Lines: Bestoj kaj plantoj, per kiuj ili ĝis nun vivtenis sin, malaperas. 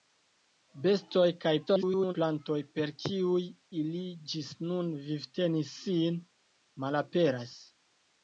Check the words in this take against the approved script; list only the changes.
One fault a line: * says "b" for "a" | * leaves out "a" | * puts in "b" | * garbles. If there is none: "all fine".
* garbles